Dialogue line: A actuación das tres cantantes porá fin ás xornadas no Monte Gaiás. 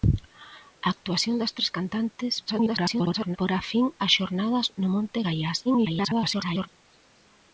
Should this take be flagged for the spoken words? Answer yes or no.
yes